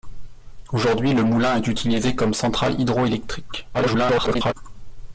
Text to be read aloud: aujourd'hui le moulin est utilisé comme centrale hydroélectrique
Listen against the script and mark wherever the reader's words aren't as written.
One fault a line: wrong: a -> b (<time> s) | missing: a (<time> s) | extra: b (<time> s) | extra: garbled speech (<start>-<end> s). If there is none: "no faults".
extra: garbled speech (3.7-4.5 s)